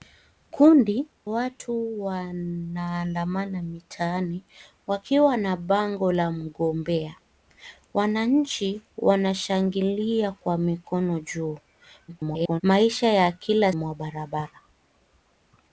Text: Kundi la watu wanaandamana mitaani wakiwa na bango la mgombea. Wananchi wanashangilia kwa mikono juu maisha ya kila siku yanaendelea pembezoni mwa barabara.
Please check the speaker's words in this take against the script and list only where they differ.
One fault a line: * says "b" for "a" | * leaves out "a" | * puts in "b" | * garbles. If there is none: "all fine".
* leaves out "la"
* garbles
* leaves out "siku yanaendelea pembezoni"